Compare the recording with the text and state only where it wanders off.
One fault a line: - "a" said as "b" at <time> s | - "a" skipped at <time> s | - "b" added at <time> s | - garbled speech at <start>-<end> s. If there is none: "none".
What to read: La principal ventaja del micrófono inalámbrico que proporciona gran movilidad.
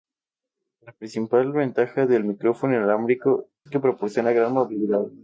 none